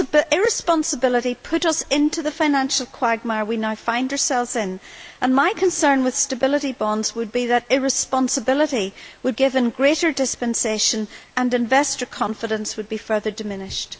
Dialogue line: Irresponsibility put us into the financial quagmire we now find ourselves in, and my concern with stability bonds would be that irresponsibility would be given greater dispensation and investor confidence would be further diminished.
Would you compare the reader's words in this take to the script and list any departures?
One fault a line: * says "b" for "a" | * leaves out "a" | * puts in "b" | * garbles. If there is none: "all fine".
* leaves out "be"